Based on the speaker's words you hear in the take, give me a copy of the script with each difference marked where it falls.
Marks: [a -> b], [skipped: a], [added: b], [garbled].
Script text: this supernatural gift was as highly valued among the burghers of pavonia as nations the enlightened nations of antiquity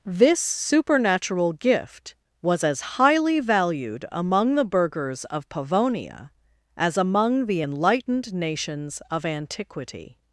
this supernatural gift was as highly valued among the burghers of pavonia as [nations -> among] the enlightened nations of antiquity